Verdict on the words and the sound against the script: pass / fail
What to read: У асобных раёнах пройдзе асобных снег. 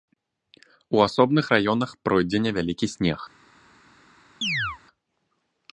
fail